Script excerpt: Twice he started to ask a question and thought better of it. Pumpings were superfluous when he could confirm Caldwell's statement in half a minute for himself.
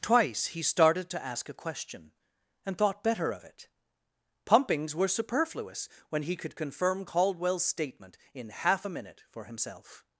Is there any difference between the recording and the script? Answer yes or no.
no